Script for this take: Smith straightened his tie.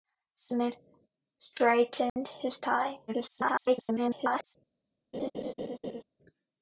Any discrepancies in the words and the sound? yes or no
yes